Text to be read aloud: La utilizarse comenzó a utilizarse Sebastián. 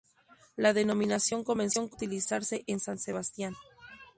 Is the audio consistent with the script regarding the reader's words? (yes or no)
no